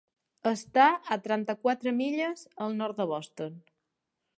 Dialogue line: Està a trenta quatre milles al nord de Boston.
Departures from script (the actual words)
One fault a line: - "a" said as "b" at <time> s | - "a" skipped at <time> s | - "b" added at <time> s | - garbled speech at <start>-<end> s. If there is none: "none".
none